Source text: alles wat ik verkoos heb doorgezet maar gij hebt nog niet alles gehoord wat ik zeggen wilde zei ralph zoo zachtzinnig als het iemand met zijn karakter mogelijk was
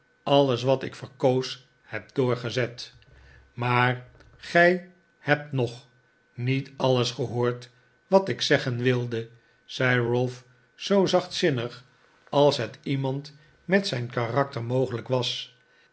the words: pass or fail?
pass